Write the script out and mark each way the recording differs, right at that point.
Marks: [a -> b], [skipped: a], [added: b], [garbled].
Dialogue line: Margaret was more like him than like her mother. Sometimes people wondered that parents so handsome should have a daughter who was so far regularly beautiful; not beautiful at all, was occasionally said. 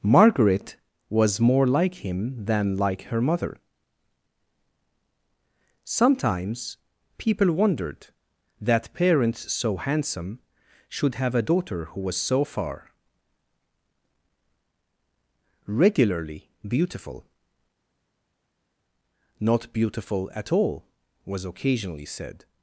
Margaret was more like him than like her mother. Sometimes people wondered that parents so handsome should have a daughter who was so far regularly beautiful; not beautiful at all, was occasionally said.